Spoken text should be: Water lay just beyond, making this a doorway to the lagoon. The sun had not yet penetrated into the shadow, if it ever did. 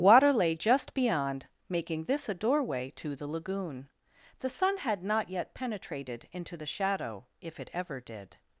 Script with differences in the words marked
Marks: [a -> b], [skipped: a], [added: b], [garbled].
Water lay just beyond, making this a doorway to the lagoon. The sun had not yet penetrated into the shadow, if it ever did.